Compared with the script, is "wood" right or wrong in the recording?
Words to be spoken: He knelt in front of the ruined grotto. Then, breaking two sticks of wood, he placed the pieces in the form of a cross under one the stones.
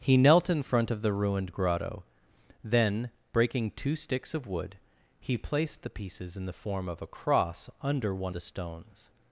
right